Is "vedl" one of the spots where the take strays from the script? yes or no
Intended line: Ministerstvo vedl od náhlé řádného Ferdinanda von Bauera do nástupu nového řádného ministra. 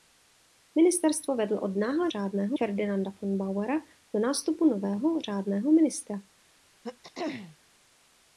no